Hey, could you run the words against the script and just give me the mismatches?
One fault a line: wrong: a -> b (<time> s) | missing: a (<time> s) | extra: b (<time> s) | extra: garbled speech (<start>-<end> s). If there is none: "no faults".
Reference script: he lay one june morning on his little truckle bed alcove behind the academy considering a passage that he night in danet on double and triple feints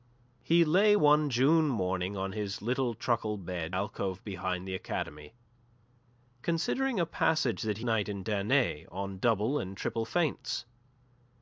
no faults